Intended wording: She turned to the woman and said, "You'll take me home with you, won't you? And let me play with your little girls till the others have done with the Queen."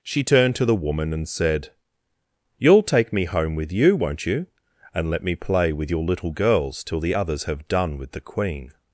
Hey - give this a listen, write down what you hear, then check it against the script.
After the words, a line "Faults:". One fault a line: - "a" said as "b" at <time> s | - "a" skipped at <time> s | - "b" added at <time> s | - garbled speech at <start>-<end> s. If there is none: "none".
She turned to the woman and said, "You'll take me home with you, won't you? And let me play with your little girls till the others have done with the Queen."
Faults:
none